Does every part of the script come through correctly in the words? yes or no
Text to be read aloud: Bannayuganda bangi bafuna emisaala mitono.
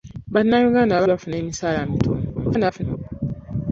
no